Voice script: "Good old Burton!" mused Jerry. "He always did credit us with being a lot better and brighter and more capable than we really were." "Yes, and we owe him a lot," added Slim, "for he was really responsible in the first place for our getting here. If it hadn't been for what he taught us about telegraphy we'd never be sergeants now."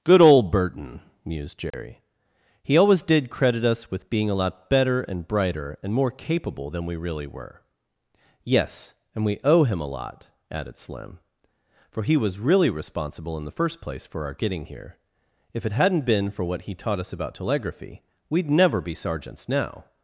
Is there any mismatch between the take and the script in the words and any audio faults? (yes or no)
yes